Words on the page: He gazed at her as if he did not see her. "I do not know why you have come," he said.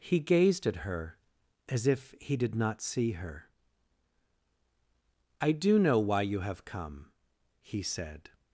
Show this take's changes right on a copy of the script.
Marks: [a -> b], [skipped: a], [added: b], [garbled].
He gazed at her as if he did not see her. "I do [skipped: not] know why you have come," he said.